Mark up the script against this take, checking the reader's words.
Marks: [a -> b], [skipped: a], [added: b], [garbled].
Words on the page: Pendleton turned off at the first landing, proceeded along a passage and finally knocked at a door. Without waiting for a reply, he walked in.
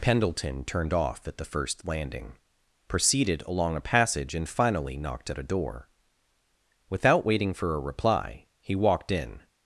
Pendleton turned off at the first landing, proceeded along a passage and finally knocked at a door. Without waiting for a reply, he walked in.